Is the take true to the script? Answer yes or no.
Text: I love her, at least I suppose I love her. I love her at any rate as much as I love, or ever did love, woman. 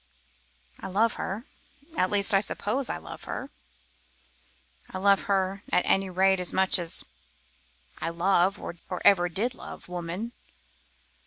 yes